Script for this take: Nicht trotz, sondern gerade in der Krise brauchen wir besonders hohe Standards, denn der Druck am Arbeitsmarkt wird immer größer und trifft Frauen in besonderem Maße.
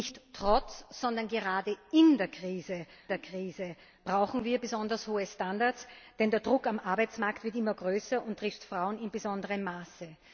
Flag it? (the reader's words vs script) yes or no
yes